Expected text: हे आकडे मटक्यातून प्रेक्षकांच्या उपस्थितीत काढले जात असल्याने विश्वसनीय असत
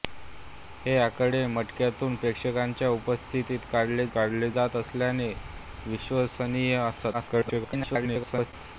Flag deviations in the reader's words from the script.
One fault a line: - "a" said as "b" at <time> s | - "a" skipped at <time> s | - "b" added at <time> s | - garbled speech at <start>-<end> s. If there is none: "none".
- "काढले" added at 4.1 s
- garbled speech at 7.1-8.5 s